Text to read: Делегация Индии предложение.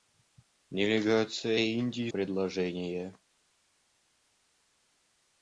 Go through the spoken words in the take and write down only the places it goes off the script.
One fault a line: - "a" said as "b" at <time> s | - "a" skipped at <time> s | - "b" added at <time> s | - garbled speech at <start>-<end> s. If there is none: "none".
none